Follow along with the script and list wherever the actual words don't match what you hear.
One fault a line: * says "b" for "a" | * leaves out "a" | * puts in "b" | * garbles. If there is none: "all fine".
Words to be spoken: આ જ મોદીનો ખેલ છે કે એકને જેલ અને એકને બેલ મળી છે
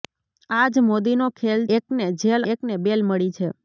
* leaves out "છે કે"
* leaves out "અને"